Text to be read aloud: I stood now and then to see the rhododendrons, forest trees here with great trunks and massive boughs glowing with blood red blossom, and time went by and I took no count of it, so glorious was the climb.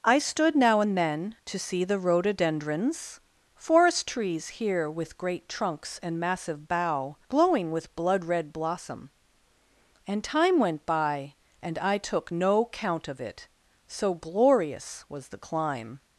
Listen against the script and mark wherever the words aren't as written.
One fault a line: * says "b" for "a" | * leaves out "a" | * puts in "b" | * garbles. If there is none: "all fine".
* says "bough" for "boughs"